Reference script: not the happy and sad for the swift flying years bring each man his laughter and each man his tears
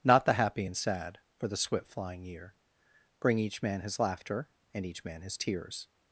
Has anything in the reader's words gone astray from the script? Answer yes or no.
yes